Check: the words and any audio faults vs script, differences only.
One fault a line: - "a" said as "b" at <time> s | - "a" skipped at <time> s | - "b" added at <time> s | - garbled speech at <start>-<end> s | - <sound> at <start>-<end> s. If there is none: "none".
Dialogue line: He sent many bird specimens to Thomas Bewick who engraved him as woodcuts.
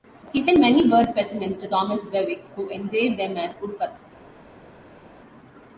- "him" said as "them" at 3.2 s